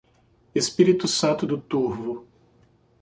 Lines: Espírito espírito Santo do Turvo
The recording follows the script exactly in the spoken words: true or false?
false